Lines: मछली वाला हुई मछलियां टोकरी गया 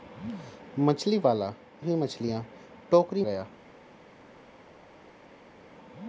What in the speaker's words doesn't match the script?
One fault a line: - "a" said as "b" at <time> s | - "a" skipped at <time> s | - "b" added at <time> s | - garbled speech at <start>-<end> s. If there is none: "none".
none